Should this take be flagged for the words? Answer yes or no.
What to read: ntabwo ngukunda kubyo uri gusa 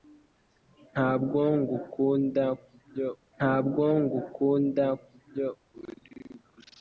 yes